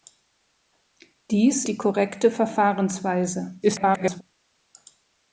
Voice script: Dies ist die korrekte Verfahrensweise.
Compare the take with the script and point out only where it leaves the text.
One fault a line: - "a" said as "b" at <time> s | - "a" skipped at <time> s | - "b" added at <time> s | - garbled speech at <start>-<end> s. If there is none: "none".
- "ist" skipped at 1.6 s
- garbled speech at 3.6-4.2 s